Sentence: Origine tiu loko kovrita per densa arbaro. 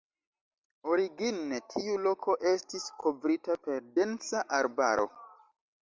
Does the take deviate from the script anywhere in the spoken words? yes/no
yes